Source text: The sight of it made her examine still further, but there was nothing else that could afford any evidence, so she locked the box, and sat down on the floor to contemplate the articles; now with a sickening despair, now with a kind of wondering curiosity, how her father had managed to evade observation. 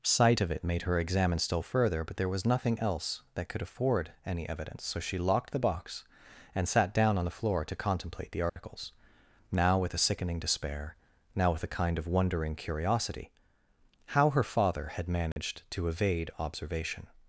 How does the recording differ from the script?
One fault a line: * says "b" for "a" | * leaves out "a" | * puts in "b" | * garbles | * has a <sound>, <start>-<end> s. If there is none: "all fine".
* leaves out "The"
* has a dropout, 8.5-8.6 s
* has a dropout, 15.3-15.4 s